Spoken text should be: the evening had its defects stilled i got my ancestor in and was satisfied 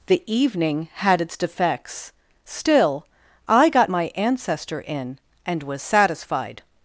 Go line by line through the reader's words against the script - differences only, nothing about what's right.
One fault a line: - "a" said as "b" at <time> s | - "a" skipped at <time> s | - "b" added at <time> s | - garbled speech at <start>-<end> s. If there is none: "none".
- "stilled" said as "still" at 2.4 s